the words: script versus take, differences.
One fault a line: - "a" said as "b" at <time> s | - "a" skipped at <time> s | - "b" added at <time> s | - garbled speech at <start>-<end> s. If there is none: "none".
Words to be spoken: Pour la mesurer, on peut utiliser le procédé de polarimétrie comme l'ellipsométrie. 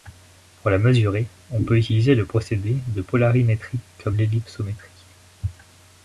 none